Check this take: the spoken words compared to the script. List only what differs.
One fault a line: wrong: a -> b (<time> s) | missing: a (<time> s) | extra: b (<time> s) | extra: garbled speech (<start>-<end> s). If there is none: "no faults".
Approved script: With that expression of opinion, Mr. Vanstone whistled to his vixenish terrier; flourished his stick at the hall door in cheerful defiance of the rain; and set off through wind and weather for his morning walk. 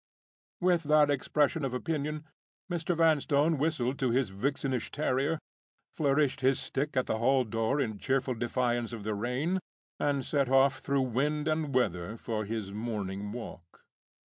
no faults